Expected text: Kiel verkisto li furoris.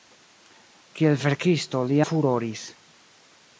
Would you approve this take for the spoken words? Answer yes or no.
yes